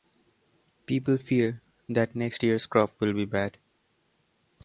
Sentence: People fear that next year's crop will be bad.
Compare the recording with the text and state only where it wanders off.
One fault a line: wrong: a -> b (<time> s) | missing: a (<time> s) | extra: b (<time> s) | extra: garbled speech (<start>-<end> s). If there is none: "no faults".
no faults